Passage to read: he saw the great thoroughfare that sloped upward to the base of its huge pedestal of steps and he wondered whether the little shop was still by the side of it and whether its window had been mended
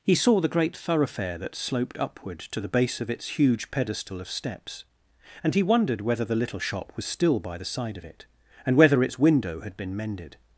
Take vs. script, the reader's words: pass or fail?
pass